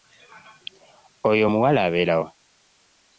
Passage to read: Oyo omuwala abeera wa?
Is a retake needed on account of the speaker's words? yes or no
no